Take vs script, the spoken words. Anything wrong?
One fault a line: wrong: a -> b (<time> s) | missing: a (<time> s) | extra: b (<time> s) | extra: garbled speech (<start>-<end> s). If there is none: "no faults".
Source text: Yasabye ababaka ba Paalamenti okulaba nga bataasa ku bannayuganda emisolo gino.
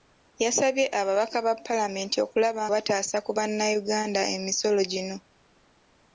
missing: nga (2.6 s)